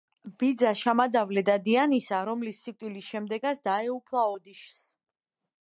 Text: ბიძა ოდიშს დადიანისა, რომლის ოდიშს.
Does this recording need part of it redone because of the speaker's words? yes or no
yes